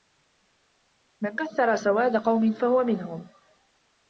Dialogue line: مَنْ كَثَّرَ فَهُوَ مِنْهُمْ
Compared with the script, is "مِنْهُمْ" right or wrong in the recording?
right